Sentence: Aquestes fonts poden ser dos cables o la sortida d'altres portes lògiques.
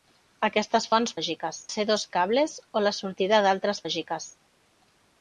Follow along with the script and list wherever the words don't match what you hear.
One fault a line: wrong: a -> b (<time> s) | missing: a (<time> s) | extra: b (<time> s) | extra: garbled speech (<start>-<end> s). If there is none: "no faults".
wrong: poden -> lògiques (1.2 s)
missing: portes (3.8 s)